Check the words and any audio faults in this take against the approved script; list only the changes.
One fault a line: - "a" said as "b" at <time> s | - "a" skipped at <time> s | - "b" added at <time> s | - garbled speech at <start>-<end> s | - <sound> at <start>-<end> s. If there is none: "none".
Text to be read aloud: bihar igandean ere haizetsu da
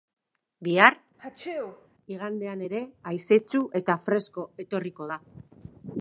- sneeze at 1.2-1.9 s
- "eta fresko etorriko" added at 3.8 s